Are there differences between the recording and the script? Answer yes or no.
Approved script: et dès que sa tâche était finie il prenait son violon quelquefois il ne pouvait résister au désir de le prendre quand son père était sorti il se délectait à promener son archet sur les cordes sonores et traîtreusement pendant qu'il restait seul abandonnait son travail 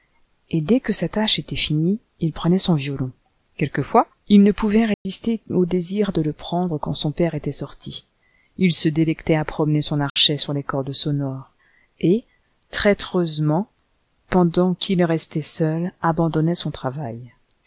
no